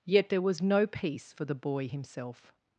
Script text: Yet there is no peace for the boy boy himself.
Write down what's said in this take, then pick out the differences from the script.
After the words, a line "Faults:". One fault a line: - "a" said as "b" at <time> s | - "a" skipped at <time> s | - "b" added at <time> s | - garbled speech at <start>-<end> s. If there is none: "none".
Yet there was no peace for the boy himself.
Faults:
- "is" said as "was" at 0.4 s
- "boy" skipped at 1.9 s